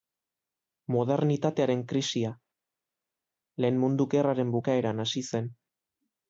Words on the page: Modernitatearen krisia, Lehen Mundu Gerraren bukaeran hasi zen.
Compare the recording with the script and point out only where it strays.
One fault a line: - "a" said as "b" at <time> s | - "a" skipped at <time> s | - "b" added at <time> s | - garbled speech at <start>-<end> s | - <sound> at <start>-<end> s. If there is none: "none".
none